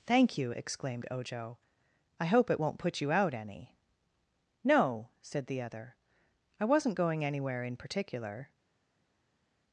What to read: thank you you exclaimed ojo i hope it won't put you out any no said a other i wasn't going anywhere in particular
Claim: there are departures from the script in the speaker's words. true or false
true